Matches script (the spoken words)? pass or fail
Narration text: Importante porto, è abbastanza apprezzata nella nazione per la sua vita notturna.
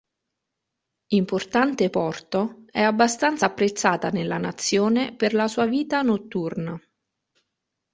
pass